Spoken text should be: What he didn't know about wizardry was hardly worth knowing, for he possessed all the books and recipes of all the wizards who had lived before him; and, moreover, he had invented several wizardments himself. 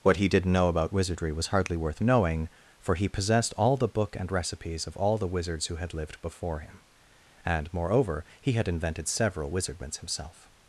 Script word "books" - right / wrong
wrong